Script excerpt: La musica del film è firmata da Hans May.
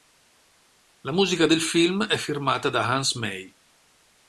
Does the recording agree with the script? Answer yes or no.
yes